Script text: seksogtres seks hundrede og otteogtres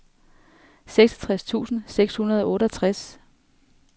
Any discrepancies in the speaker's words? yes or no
yes